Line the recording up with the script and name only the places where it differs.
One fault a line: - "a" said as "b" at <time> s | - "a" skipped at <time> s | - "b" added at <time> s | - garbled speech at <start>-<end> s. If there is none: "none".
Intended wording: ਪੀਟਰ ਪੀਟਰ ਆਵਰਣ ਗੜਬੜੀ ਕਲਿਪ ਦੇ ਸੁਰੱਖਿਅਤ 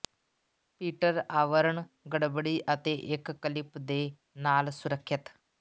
- "ਪੀਟਰ" skipped at 1.2 s
- "ਅਤੇ ਇੱਕ" added at 2.7 s
- "ਨਾਲ" added at 4.4 s